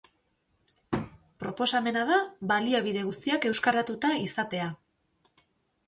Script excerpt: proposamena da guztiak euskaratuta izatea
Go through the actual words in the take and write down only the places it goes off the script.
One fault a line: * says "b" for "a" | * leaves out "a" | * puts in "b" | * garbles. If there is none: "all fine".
* puts in "baliabide"